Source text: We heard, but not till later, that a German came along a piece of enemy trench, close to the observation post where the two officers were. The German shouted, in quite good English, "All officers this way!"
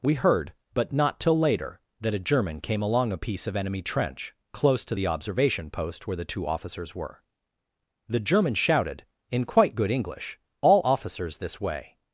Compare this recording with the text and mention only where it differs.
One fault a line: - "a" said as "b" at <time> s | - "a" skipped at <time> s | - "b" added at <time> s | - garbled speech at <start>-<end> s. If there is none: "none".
none